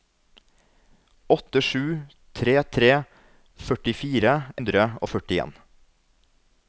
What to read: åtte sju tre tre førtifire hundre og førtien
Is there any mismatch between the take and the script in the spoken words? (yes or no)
no